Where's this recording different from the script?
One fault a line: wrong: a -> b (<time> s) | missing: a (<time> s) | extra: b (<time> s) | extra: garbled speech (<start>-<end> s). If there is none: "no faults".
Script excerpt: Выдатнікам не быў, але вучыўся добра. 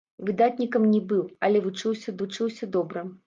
extra: вучыўся (2.2 s)